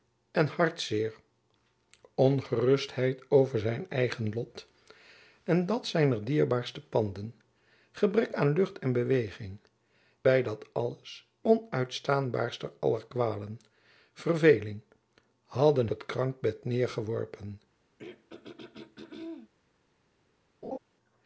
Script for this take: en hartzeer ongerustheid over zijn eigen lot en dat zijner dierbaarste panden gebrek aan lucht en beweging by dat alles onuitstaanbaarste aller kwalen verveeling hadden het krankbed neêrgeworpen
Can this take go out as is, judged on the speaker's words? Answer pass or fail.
pass